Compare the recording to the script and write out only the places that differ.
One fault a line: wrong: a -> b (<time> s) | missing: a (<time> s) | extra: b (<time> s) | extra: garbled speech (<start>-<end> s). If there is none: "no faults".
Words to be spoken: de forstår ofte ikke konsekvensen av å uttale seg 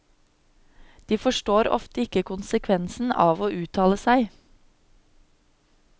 no faults